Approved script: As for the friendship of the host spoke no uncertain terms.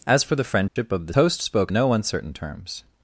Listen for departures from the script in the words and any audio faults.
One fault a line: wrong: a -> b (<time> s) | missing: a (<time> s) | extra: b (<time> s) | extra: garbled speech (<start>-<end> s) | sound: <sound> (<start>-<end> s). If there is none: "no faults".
sound: dropout (0.7-0.8 s)